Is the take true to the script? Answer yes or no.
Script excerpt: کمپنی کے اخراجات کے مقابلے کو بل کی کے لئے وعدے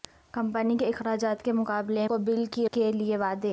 yes